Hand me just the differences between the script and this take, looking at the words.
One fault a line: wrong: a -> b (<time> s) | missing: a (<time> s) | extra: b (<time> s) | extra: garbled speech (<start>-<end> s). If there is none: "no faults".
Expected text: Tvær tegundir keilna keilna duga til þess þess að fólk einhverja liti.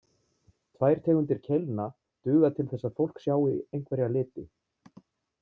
missing: keilna (1.9 s)
missing: þess (2.9 s)
extra: sjái (3.3 s)